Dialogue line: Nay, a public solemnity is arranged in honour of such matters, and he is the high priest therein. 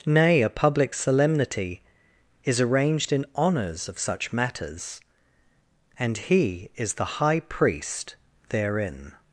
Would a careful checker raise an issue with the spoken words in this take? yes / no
yes